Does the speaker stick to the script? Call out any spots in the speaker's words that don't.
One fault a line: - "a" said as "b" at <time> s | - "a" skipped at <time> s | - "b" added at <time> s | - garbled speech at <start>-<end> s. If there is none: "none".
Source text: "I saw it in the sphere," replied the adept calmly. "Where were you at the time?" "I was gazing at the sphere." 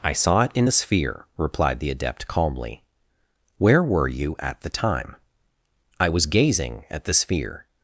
none